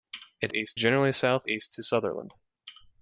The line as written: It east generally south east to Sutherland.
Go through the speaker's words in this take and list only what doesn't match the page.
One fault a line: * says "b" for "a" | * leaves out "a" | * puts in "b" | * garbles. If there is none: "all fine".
all fine